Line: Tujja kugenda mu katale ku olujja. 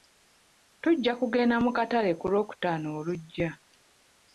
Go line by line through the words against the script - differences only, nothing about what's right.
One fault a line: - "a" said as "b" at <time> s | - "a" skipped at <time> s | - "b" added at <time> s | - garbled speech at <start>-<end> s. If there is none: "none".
- "lwokutaano" added at 2.3 s